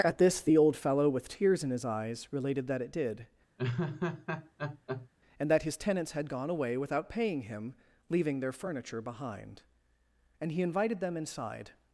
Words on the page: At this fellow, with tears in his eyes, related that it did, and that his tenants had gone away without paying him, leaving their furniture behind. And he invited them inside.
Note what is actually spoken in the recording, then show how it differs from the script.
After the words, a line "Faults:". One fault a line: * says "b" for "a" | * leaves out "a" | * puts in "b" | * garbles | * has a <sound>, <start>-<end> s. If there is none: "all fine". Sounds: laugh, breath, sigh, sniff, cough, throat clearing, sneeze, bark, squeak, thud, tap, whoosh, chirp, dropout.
At this the old fellow, with tears in his eyes, related that it did, and that his tenants had gone away without paying him, leaving their furniture behind. And he invited them inside.
Faults:
* puts in "the old"
* has a laugh, 3.6-5.1 s